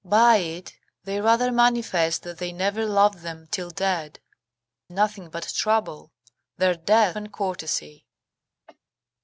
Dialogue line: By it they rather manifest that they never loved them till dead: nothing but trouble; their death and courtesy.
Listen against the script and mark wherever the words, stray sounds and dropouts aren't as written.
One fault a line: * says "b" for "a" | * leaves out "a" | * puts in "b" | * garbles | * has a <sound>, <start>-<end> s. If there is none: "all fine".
* has a cough, 8.7-8.8 s